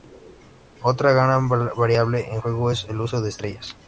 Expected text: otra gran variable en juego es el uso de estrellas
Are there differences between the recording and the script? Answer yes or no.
no